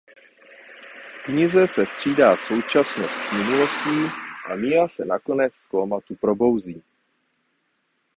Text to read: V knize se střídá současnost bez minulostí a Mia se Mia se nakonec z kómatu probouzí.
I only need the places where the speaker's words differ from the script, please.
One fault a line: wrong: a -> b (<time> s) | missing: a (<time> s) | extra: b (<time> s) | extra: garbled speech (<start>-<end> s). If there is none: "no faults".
wrong: bez -> s (3.1 s)
missing: Mia se (5.0 s)